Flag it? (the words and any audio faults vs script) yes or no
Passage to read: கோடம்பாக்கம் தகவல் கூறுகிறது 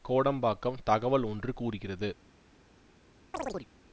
yes